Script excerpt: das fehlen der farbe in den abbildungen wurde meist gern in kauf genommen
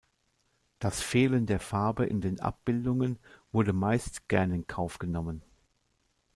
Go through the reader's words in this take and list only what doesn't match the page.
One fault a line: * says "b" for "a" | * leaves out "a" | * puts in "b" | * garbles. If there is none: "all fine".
all fine